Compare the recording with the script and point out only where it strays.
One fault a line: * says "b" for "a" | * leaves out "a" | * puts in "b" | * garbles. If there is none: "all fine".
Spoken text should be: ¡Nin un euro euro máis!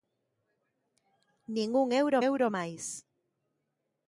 all fine